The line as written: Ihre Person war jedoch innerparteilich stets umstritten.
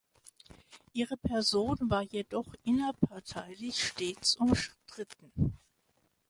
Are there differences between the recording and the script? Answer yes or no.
no